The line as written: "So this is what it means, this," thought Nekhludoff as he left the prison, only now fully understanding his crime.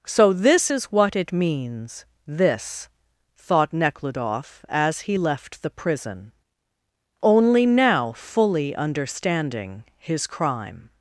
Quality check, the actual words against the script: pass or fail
pass